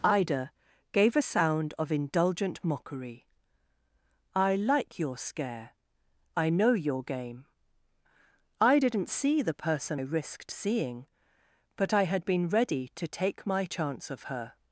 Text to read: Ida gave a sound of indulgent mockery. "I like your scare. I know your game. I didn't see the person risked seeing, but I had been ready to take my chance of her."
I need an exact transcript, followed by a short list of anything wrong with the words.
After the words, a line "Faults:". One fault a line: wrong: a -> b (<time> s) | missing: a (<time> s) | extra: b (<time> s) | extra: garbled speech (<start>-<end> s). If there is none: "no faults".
Ida gave a sound of indulgent mockery. "I like your scare. I know your game. I didn't see the person risked seeing, but I had been ready to take my chance of her."
Faults:
no faults